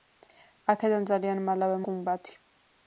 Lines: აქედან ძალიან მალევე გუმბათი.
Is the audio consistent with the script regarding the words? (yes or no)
yes